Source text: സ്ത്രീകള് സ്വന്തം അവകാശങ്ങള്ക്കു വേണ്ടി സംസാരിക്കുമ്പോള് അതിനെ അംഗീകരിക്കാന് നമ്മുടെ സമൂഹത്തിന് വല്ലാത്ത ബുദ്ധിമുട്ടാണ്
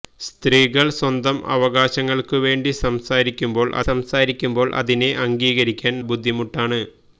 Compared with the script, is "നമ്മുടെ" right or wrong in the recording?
wrong